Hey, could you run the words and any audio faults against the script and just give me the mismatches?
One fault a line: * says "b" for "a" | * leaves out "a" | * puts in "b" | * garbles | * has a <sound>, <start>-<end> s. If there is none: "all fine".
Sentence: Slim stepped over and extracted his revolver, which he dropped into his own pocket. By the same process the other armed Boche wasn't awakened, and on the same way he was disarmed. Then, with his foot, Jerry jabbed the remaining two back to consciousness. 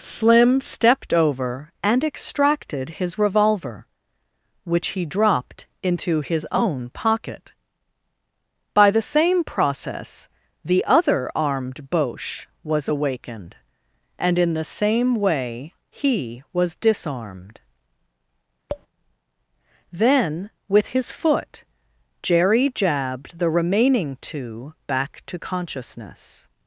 * says "was" for "wasn't"
* says "in" for "on"
* has a tap, 18.7-18.9 s